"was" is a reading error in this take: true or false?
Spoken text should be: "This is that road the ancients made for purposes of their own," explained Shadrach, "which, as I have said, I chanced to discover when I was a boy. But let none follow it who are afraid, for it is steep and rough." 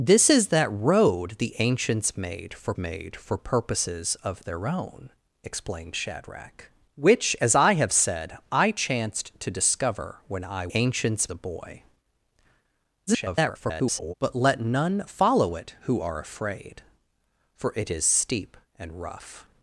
true